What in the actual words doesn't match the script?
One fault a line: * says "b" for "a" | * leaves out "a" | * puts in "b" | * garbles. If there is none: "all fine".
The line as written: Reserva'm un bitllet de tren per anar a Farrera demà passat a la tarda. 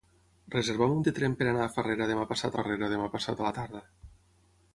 * leaves out "bitllet"
* puts in "Farrera demà passat"